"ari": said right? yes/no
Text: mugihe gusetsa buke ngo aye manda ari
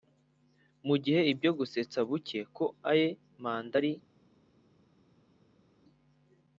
yes